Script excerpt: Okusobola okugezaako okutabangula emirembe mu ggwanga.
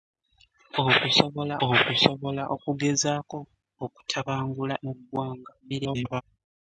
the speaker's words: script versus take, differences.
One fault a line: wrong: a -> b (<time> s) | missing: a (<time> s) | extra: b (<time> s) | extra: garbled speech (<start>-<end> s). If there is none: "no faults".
extra: okusobola (1.7 s)
missing: emirembe (4.7 s)
extra: garbled speech (5.6-6.2 s)